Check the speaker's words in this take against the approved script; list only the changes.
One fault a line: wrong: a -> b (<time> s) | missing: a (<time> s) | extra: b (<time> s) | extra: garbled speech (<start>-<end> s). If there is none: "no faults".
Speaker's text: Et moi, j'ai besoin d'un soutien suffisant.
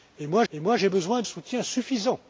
extra: et moi (0.5 s)
missing: d'un (1.2 s)